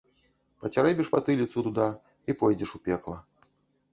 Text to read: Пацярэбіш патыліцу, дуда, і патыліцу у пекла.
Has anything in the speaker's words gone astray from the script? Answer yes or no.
yes